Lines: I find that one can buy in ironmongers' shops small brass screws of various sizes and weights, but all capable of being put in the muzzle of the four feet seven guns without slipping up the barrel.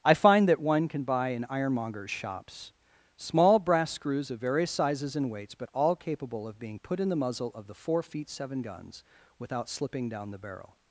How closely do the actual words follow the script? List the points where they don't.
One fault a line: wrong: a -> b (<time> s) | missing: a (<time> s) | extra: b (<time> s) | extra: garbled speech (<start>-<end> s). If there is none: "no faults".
wrong: up -> down (10.1 s)